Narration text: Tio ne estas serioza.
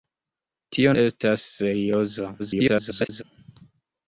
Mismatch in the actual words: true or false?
true